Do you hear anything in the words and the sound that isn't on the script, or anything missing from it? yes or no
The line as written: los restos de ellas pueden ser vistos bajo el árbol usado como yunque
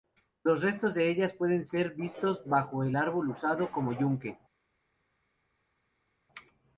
no